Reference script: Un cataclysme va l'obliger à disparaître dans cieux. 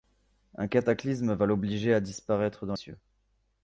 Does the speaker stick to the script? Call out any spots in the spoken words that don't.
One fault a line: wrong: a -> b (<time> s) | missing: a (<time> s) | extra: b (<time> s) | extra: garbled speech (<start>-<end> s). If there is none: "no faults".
no faults